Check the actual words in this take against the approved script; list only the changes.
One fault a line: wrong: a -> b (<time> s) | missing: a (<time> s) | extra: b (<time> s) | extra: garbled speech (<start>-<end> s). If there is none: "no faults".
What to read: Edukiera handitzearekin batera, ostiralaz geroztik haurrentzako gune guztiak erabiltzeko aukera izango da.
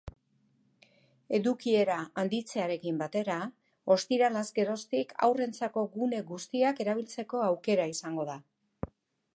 no faults